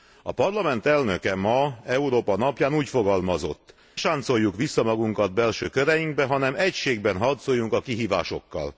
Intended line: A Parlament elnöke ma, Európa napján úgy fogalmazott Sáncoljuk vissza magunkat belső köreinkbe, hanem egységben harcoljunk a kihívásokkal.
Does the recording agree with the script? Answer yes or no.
yes